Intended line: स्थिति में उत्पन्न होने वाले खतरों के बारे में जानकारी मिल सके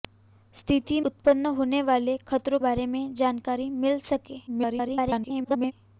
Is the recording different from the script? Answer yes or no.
yes